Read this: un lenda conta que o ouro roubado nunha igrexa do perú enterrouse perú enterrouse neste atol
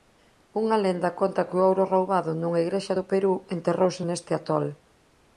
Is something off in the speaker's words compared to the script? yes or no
yes